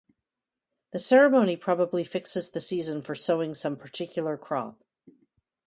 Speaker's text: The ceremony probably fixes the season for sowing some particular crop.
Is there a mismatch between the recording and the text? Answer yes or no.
no